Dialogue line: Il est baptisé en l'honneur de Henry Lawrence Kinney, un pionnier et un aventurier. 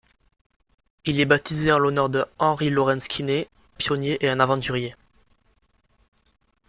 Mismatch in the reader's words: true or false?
true